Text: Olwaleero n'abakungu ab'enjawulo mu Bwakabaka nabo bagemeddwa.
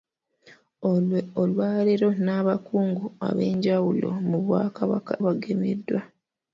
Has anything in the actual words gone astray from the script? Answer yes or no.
yes